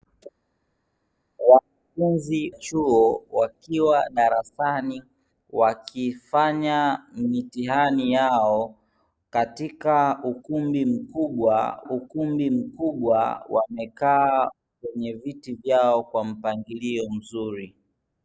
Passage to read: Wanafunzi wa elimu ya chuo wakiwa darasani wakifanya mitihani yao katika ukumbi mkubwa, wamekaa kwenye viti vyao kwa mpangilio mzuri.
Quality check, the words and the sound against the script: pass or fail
fail